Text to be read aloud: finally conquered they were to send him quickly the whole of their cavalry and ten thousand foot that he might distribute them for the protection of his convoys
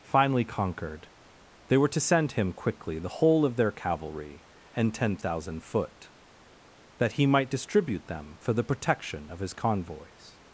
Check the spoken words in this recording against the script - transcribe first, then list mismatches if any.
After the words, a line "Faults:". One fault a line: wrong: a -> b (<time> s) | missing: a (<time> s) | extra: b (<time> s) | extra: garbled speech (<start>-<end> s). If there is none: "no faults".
finally conquered they were to send him quickly the whole of their cavalry and ten thousand foot that he might distribute them for the protection of his convoys
Faults:
no faults